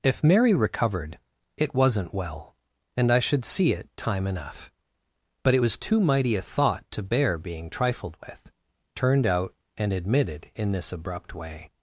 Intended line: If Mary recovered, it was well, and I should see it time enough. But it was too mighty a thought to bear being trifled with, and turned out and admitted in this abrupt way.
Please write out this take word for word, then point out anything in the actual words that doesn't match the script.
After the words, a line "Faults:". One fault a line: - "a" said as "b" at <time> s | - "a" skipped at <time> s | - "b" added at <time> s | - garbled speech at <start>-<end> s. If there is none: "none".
If Mary recovered, it wasn't well, and I should see it time enough. But it was too mighty a thought to bear being trifled with, turned out and admitted in this abrupt way.
Faults:
- "was" said as "wasn't" at 1.8 s
- "and" skipped at 8.5 s